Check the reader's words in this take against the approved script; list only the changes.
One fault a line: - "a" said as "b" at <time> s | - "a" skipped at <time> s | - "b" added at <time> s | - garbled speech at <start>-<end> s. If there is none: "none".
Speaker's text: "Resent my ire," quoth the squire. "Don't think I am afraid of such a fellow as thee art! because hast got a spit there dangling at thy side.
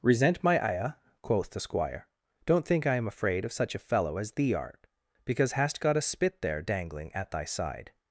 none